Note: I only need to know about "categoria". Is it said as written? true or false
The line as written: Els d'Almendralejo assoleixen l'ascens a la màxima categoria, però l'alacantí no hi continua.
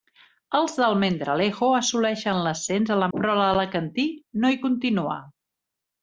false